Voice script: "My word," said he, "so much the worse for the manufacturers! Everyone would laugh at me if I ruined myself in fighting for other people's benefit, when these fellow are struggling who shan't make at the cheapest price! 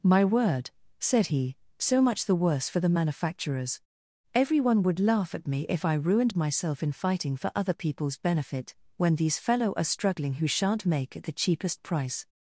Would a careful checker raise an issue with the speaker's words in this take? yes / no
no